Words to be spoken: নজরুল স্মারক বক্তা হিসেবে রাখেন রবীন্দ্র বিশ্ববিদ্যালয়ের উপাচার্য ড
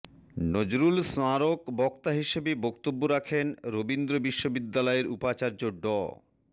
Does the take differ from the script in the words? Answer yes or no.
yes